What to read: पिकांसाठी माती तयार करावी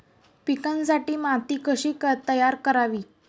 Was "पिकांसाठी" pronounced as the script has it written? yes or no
yes